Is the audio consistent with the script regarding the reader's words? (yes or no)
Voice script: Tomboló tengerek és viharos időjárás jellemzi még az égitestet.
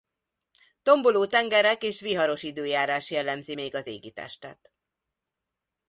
yes